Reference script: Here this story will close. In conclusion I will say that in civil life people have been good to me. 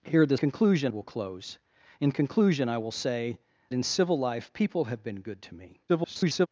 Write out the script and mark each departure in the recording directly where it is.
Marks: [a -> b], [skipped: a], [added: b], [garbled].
Here this [story -> conclusion] will close. In conclusion I will say [skipped: that] in civil life people have been good to me. [garbled]